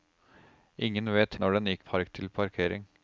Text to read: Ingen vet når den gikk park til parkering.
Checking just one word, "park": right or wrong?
right